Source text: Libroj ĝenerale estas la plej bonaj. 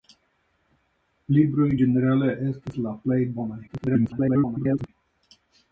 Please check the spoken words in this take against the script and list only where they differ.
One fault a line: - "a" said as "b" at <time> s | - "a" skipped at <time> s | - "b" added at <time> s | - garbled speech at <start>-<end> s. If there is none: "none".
- garbled speech at 3.7-4.9 s